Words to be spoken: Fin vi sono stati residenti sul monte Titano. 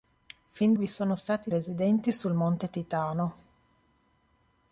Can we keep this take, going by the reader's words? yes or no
yes